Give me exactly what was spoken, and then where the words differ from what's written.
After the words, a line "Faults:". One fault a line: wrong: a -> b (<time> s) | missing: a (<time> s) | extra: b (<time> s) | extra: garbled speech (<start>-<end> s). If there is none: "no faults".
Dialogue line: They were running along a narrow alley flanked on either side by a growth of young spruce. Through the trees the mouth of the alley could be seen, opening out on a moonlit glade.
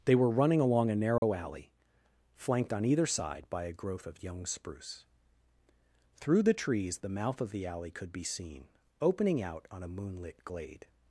They were running along a narrow alley flanked on either side by a growth of young spruce. Through the trees the mouth of the alley could be seen, opening out on a moonlit glade.
Faults:
no faults